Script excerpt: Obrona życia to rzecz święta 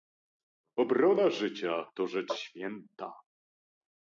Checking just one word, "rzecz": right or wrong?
right